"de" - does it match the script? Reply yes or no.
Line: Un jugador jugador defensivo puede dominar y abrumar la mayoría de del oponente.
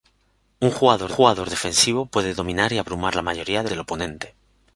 yes